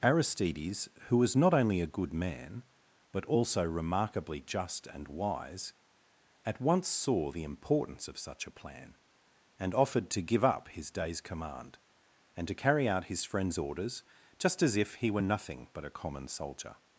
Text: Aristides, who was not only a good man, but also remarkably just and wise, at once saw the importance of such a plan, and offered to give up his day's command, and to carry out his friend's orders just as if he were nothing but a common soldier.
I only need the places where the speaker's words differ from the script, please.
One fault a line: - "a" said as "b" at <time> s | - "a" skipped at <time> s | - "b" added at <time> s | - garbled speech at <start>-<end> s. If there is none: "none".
none